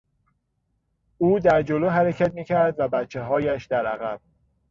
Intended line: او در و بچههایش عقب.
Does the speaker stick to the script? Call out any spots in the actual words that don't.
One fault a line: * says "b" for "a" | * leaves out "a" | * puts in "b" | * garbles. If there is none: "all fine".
* puts in "جلو حرکت میکرد"
* puts in "در"